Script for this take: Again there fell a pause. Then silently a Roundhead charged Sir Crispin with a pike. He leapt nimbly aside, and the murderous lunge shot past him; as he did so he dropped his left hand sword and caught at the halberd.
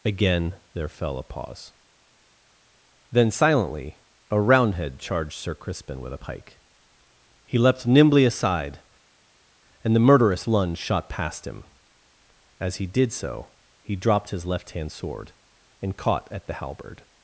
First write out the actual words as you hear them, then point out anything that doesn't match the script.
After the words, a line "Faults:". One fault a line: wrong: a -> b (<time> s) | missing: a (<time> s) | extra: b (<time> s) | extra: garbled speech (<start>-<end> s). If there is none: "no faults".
Again there fell a pause. Then silently a Roundhead charged Sir Crispin with a pike. He leapt nimbly aside, and the murderous lunge shot past him; as he did so he dropped his left hand sword and caught at the halberd.
Faults:
no faults